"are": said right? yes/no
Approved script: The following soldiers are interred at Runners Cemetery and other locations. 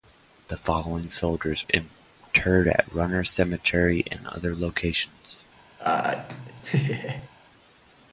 no